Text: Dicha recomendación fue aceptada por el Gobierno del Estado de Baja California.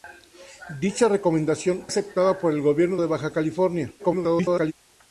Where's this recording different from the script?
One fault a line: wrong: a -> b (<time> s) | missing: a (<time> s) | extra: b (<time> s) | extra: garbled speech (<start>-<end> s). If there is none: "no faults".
missing: fue (1.9 s)
missing: del Estado (3.0 s)
extra: garbled speech (4.0-4.7 s)